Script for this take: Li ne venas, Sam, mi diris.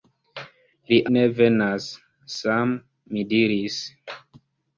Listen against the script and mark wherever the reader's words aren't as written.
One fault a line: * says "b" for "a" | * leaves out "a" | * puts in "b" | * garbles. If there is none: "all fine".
all fine